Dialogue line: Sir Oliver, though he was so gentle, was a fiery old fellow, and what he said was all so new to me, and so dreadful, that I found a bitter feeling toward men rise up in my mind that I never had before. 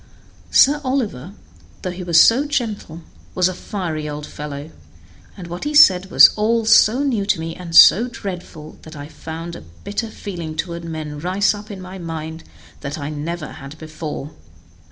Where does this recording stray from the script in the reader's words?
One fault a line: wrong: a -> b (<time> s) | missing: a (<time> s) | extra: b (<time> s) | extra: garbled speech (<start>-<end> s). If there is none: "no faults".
no faults